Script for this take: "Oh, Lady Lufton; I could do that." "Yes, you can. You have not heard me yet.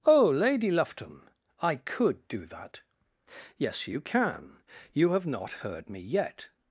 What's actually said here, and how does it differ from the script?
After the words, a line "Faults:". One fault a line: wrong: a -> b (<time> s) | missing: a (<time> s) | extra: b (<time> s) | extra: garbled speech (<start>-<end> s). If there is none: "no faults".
"Oh, Lady Lufton; I could do that." "Yes, you can. You have not heard me yet.
Faults:
no faults